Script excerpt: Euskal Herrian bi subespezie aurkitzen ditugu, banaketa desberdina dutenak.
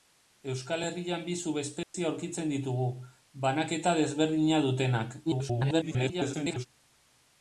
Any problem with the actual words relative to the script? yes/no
yes